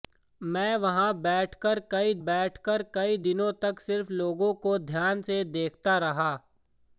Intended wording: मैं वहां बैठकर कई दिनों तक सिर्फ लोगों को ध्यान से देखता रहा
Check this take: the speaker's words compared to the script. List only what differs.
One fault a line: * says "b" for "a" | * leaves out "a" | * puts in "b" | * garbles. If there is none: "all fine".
* puts in "बैठकर कई"